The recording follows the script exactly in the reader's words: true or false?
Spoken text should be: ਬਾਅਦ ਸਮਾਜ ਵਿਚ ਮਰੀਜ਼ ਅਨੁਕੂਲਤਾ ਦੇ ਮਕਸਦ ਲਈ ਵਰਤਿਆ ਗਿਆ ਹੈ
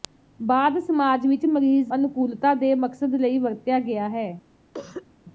true